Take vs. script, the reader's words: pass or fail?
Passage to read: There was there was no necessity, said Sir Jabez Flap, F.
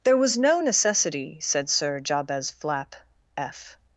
fail